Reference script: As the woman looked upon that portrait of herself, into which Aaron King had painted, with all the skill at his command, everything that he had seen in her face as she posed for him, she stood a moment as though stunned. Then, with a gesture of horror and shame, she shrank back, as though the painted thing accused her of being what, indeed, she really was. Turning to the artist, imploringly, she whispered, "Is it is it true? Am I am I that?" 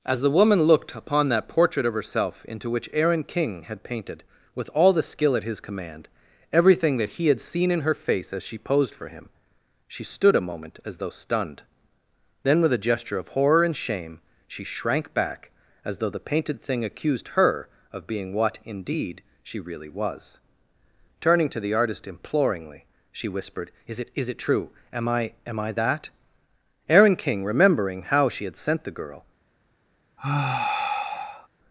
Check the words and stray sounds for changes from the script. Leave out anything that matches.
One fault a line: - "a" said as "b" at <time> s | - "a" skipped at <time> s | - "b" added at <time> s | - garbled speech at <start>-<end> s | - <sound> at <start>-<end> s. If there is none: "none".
- "Aaron King remembering how she had sent the girl" added at 26.9 s
- sigh at 30.2-31.5 s